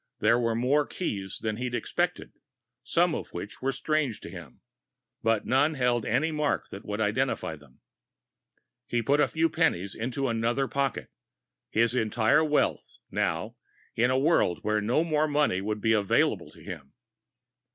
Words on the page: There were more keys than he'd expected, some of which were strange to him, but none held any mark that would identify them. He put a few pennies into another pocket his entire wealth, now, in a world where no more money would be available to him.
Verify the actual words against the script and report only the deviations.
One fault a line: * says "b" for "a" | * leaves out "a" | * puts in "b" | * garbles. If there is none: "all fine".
all fine